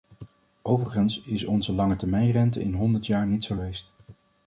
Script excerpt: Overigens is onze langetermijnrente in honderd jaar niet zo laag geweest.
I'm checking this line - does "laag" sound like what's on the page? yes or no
no